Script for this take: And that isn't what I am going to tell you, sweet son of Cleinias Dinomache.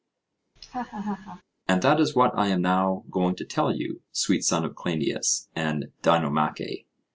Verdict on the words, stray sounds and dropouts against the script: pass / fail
fail